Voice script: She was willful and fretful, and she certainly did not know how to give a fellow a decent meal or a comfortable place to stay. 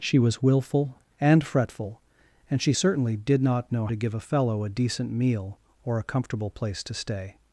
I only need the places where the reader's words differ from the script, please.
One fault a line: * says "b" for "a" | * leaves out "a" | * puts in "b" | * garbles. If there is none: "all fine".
* leaves out "how"